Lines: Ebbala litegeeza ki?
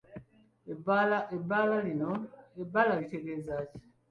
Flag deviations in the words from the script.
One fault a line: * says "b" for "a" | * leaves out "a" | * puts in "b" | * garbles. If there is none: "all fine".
all fine